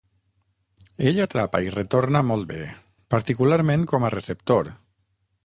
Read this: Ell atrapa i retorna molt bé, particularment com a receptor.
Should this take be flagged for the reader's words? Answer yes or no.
no